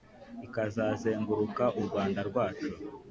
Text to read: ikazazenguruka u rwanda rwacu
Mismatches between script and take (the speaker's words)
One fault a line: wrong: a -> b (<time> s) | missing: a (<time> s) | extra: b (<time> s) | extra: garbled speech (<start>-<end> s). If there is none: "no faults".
no faults